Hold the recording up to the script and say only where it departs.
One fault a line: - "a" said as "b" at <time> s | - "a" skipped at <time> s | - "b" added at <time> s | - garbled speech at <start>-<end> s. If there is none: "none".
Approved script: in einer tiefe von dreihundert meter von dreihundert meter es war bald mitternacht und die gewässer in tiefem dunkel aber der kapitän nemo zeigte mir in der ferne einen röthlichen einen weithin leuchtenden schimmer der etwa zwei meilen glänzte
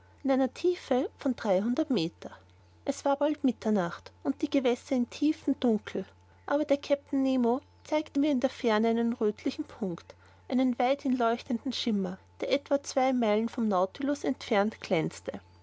- "von dreihundert meter" skipped at 2.3 s
- "punkt" added at 9.6 s
- "vom nautilus entfernt" added at 13.5 s